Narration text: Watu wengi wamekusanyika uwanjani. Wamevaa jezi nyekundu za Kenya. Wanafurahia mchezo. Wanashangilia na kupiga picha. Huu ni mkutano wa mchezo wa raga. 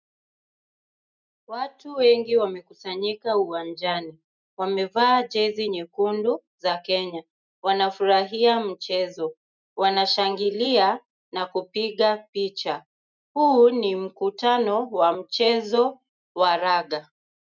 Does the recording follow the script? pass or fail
pass